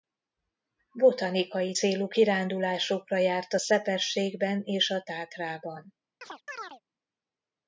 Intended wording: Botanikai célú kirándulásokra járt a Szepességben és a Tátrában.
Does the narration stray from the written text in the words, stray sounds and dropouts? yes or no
yes